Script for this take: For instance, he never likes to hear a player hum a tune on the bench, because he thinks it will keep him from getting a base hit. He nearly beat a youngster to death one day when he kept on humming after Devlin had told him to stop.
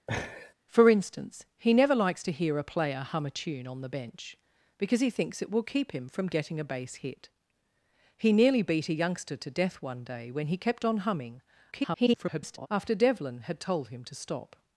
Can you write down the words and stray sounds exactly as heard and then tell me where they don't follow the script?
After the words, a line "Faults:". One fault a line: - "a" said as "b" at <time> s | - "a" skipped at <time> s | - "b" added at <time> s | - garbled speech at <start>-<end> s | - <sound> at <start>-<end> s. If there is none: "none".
For instance, he never likes to hear a player hum a tune on the bench, because he thinks it will keep him from getting a base hit. He nearly beat a youngster to death one day when he kept on humming [garbled] after Devlin had told him to stop.
Faults:
- laugh at 0.1-0.5 s
- garbled speech at 11.7-12.7 s